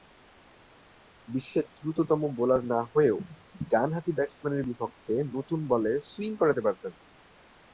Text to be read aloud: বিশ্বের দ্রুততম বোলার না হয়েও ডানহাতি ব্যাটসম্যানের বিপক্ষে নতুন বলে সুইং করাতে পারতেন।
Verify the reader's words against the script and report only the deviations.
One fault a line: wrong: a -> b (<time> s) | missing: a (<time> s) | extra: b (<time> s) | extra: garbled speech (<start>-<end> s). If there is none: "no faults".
no faults